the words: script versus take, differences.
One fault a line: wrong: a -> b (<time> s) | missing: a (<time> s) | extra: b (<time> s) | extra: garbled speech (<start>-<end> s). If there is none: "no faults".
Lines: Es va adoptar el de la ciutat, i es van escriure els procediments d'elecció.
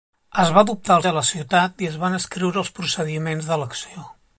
no faults